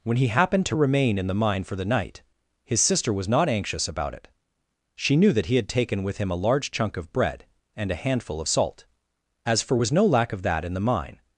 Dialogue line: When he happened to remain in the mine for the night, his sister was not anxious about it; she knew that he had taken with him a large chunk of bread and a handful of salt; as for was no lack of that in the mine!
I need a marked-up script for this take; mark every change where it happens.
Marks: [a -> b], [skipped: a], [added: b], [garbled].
When he happened to remain in the mine for the night, his sister was not anxious about it; she knew that he had taken with him a large chunk of bread and a handful of salt; as for was no lack of that in the mine!